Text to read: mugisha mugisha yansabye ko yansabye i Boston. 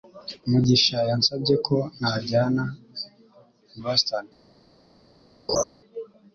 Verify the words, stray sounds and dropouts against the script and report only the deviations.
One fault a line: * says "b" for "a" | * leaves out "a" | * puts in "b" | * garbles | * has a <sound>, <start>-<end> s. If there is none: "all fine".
* leaves out "mugisha"
* says "najyana" for "yansabye"
* has a laugh, 5.5-5.6 s